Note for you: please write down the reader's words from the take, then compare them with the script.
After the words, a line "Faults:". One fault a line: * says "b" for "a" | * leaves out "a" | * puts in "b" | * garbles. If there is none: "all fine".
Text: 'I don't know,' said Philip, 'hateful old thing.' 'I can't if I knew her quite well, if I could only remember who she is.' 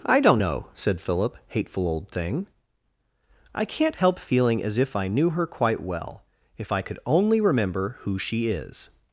'I don't know,' said Philip, 'hateful old thing.' 'I can't help feeling as if I knew her quite well, if I could only remember who she is.'
Faults:
* puts in "help feeling as"